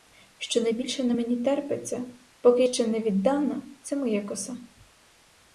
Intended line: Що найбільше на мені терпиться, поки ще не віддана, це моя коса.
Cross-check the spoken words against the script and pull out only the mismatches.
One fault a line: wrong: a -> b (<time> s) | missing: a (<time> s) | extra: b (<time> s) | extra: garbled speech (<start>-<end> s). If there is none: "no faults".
no faults